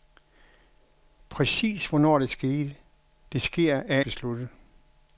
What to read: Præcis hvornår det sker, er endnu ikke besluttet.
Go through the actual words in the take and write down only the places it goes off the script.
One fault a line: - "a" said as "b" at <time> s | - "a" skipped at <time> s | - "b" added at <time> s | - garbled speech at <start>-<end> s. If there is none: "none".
- "endnu ikke" skipped at 4.0 s